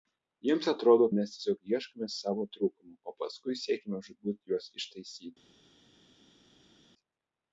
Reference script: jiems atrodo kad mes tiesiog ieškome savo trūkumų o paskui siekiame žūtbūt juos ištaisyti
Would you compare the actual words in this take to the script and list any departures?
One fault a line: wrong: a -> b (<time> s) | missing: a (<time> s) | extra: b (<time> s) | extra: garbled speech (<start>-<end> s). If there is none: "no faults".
missing: kad (1.1 s)